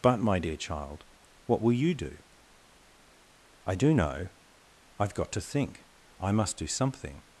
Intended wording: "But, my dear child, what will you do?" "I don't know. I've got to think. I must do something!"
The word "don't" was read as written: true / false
false